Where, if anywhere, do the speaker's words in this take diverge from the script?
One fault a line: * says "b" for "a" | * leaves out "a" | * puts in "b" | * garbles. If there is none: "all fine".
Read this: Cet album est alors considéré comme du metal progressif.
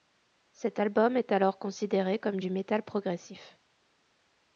all fine